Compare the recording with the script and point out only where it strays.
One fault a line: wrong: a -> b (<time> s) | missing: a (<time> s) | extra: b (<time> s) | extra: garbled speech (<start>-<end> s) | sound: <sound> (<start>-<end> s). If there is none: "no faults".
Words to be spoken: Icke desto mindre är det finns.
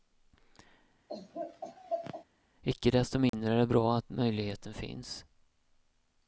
sound: laugh (1.1-2.2 s)
sound: dropout (3.3-3.3 s)
extra: bra att möjligheten (3.7 s)